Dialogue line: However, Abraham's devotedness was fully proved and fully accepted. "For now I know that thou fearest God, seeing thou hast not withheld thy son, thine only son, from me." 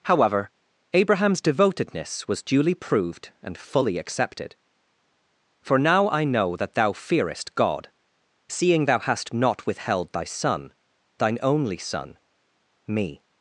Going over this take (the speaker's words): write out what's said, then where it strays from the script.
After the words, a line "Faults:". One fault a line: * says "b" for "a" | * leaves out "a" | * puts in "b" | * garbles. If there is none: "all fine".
However, Abraham's devotedness was duly proved and fully accepted. "For now I know that thou fearest God, seeing thou hast not withheld thy son, thine only son, me."
Faults:
* says "duly" for "fully"
* leaves out "from"